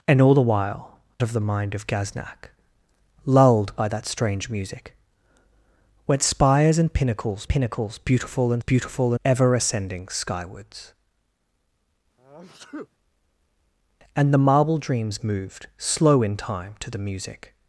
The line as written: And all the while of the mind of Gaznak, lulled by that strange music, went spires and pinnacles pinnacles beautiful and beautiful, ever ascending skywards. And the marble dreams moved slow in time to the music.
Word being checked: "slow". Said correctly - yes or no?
yes